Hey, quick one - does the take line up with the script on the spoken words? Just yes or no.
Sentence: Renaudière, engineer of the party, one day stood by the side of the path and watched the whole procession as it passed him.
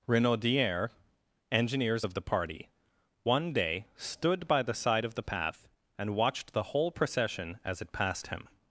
no